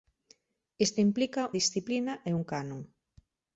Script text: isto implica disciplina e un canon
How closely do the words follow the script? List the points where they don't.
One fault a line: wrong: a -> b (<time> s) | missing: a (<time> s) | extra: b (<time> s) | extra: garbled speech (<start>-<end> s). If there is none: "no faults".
no faults